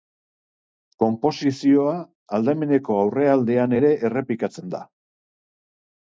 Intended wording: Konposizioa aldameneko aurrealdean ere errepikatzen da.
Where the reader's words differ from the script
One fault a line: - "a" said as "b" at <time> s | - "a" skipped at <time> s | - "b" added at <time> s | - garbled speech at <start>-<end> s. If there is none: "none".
none